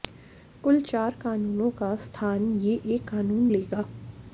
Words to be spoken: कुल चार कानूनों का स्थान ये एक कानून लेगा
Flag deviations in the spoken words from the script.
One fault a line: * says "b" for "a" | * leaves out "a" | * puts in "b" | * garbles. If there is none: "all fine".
all fine